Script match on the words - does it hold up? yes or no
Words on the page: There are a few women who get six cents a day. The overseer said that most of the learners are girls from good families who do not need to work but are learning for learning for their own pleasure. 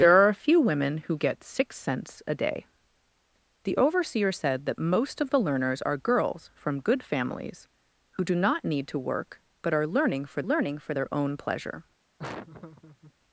yes